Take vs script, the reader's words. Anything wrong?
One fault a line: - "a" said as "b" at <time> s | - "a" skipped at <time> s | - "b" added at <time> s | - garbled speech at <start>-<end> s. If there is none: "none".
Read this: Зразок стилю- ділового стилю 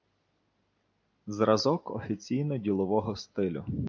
- "стилю" said as "офіційно" at 1.9 s